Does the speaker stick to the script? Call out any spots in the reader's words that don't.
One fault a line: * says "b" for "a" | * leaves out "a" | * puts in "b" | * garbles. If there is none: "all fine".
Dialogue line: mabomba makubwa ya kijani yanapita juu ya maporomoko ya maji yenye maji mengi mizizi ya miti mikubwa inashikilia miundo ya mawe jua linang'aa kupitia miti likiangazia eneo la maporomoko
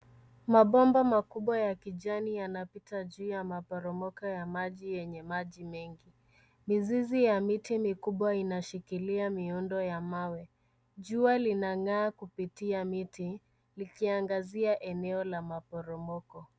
all fine